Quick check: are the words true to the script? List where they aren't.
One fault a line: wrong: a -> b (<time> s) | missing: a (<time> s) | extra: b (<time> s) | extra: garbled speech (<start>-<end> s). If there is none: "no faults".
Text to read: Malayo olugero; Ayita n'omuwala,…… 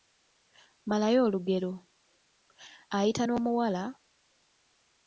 no faults